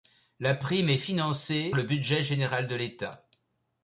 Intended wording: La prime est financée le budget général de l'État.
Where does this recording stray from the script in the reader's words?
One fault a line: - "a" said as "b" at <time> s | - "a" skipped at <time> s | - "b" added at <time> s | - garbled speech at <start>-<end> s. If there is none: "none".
none